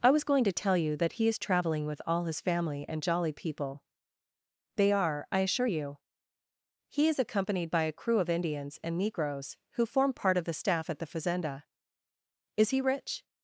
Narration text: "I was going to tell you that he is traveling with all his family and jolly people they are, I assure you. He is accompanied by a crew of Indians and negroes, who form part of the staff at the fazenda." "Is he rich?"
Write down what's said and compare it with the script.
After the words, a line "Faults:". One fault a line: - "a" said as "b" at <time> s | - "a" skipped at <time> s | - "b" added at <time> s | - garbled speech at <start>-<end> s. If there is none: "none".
"I was going to tell you that he is traveling with all his family and jolly people they are, I assure you. He is accompanied by a crew of Indians and negroes, who form part of the staff at the fazenda." "Is he rich?"
Faults:
none